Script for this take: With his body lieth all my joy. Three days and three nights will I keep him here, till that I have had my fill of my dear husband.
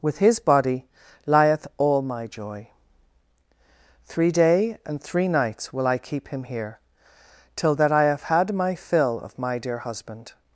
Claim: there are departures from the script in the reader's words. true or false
true